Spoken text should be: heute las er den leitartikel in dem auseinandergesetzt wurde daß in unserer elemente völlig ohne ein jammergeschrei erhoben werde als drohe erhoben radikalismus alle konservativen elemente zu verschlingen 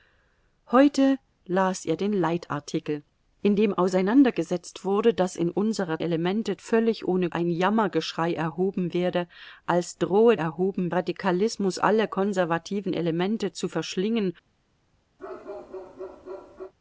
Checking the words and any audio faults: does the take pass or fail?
fail